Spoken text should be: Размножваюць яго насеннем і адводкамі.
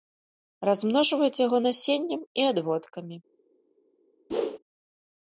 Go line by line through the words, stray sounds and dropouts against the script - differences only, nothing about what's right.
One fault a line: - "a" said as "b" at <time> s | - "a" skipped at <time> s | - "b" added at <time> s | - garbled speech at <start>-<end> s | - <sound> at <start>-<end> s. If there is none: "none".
- whoosh at 4.3-4.6 s